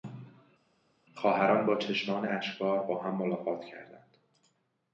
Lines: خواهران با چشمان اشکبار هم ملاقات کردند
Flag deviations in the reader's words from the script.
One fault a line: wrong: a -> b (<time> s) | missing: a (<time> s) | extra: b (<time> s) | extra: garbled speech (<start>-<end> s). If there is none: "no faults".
extra: با (2.8 s)